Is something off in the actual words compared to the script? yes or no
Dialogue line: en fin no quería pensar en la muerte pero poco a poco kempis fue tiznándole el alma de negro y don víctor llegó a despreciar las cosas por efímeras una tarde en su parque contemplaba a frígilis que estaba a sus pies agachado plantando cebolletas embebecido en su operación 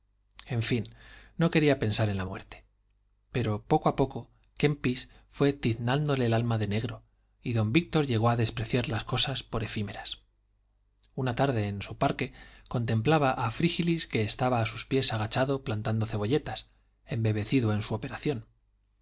no